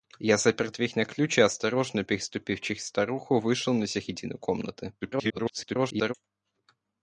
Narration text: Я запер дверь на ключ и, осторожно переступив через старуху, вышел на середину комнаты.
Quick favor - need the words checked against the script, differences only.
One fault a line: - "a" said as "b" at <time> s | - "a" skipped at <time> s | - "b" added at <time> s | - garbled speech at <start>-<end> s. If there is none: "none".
- garbled speech at 5.0-6.1 s